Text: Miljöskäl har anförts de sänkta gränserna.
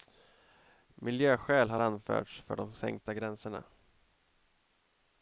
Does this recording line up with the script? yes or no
no